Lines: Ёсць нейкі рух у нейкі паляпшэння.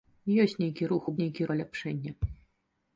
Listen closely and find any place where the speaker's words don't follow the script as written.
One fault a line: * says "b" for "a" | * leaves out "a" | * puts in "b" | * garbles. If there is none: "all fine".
all fine